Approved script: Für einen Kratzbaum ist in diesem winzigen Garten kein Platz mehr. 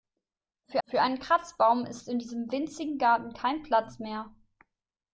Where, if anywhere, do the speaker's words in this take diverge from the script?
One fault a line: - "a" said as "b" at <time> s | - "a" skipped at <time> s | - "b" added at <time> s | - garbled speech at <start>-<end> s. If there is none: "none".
- "für" added at 0.8 s